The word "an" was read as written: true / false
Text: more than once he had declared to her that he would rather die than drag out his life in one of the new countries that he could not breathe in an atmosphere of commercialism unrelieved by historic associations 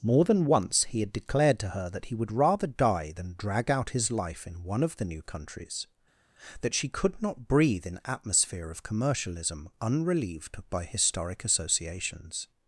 false